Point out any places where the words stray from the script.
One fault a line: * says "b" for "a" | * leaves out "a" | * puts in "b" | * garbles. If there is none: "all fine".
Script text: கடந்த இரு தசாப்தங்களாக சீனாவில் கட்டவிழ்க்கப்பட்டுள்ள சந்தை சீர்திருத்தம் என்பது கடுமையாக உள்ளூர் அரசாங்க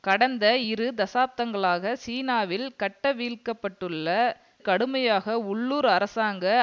* leaves out "சந்தை சீர்திருத்தம் என்பது"